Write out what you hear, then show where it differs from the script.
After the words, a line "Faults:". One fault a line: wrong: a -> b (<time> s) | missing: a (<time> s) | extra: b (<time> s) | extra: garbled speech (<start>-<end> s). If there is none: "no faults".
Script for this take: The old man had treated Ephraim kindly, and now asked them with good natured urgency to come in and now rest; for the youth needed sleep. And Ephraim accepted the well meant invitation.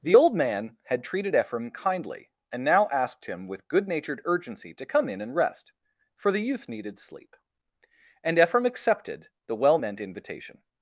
The old man had treated Ephraim kindly, and now asked him with good natured urgency to come in and rest; for the youth needed sleep. And Ephraim accepted the well meant invitation.
Faults:
wrong: them -> him (3.2 s)
missing: now (5.3 s)